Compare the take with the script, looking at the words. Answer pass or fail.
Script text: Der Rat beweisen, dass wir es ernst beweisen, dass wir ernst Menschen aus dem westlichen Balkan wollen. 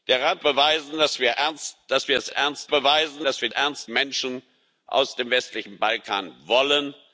pass